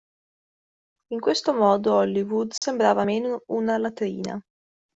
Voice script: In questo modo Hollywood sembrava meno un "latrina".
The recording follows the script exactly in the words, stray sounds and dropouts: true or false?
false